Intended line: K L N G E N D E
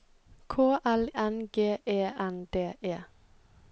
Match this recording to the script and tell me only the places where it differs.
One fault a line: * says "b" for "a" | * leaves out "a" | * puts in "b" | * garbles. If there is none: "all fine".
all fine